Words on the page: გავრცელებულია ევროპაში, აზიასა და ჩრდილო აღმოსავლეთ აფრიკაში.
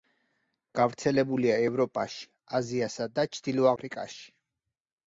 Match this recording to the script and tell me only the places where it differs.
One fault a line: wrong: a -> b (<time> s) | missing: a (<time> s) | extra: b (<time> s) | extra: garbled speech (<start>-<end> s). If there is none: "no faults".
missing: აღმოსავლეთ (3.7 s)